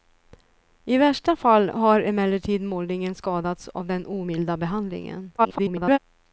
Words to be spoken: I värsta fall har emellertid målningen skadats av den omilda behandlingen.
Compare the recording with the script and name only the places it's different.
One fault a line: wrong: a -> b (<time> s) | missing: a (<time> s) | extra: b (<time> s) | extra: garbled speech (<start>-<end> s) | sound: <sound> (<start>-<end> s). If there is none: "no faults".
extra: garbled speech (5.4-6.0 s)